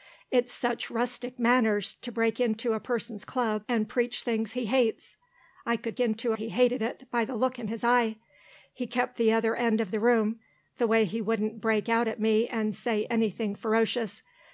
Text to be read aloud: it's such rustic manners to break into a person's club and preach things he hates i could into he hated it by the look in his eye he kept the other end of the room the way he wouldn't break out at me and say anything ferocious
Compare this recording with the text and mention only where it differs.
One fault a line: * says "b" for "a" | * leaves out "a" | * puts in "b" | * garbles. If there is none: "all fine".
all fine